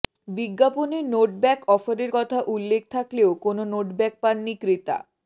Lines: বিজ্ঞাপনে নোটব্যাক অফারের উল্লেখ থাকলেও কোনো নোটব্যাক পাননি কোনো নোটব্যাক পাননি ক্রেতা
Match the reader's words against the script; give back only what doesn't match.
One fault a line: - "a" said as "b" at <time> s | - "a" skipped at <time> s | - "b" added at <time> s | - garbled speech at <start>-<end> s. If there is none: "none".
- "কথা" added at 2.1 s
- "কোনো নোটব্যাক পাননি" skipped at 4.5 s